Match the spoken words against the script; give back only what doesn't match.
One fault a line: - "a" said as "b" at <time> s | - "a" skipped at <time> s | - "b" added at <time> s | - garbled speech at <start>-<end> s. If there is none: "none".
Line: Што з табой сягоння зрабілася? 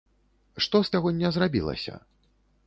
- "табой" skipped at 0.9 s